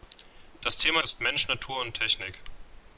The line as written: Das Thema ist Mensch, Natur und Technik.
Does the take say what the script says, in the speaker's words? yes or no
yes